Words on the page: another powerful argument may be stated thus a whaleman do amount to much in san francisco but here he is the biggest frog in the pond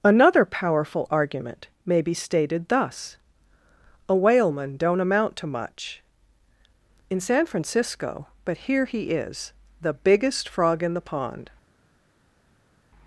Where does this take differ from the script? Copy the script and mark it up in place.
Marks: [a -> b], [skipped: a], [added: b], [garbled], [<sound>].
another powerful argument may be stated thus a whaleman [do -> don't] amount to much in san francisco but here he is the biggest frog in the pond